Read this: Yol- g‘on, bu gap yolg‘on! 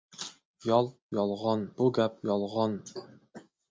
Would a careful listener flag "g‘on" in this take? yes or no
yes